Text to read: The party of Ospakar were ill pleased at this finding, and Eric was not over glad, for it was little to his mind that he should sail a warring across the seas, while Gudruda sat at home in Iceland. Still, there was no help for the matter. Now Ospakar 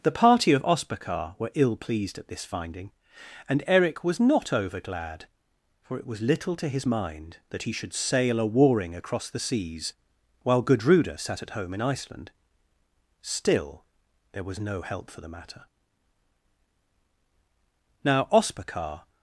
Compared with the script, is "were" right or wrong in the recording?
right